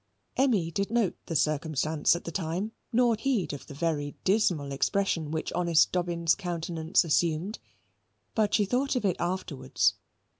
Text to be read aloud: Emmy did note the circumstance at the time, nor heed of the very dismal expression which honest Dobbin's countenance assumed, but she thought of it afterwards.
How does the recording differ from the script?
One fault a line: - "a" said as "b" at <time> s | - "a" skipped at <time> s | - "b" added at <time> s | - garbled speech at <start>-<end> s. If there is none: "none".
none